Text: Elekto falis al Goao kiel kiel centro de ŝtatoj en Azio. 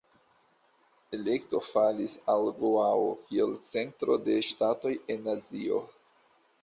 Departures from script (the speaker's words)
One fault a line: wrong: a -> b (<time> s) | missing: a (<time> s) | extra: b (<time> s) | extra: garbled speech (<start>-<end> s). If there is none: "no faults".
missing: kiel (3.5 s)